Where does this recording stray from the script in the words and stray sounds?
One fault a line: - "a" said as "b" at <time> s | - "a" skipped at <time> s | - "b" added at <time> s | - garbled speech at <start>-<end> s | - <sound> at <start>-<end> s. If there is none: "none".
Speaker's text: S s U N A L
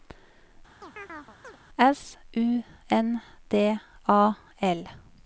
- chirp at 0.8-1.6 s
- "s" skipped at 2.2 s
- "D" added at 3.5 s